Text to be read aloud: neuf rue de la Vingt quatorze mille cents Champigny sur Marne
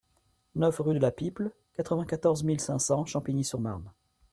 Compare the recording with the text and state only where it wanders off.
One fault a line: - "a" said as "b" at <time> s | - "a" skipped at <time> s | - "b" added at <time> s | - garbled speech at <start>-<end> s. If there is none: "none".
- "Piple quatre" added at 1.1 s
- "cinq" added at 2.6 s